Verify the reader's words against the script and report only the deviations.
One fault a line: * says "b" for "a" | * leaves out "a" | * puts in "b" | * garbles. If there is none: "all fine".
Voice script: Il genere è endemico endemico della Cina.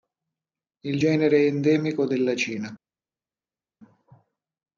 * leaves out "endemico"